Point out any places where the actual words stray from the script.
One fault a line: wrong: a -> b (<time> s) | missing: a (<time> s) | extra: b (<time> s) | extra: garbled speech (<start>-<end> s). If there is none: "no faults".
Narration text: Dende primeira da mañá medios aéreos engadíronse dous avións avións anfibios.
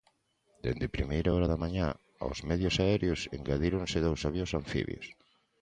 extra: hora (1.3 s)
extra: aos (2.2 s)
missing: avións (4.5 s)